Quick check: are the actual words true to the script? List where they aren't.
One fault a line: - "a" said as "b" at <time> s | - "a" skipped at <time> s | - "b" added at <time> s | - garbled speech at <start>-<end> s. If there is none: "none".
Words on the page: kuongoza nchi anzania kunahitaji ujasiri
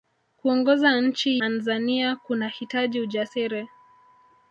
none